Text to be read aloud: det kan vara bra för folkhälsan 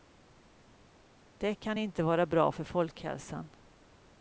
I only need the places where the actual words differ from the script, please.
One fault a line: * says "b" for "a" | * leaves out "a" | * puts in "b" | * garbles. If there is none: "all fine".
* puts in "inte"